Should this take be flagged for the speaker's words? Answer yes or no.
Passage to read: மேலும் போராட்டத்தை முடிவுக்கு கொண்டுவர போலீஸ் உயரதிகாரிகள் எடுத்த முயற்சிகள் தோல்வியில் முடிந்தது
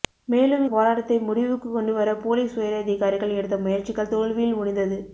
no